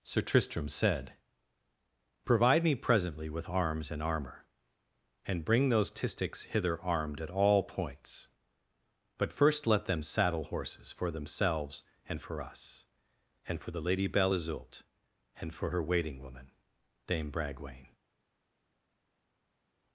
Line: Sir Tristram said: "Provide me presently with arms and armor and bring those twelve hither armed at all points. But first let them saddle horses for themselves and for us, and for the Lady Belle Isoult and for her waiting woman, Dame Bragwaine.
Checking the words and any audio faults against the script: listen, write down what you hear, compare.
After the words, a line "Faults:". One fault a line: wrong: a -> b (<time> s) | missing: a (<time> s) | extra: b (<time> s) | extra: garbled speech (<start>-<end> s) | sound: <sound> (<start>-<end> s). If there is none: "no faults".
Sir Tristram said: "Provide me presently with arms and armor and bring those tistics hither armed at all points. But first let them saddle horses for themselves and for us, and for the Lady Belle Isoult and for her waiting woman, Dame Bragwaine.
Faults:
wrong: twelve -> tistics (5.9 s)